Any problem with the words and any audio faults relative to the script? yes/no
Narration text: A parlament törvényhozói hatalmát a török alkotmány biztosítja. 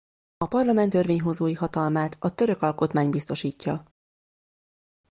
no